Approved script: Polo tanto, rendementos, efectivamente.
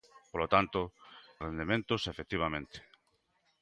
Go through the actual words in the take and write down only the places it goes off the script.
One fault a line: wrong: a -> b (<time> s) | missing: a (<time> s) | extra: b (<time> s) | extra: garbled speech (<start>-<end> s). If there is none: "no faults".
no faults